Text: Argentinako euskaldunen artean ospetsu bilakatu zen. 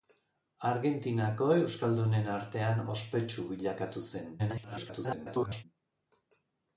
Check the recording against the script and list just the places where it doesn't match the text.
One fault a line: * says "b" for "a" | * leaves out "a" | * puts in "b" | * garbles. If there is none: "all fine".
* garbles